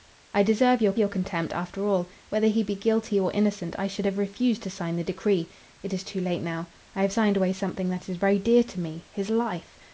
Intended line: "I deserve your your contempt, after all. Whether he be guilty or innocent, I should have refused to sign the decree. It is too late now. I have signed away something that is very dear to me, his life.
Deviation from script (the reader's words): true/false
false